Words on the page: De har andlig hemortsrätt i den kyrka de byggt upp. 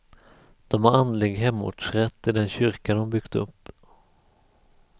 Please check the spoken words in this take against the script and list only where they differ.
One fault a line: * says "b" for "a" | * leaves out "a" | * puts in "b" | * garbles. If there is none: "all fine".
all fine